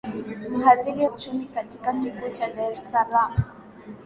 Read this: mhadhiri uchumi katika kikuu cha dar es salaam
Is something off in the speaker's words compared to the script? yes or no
no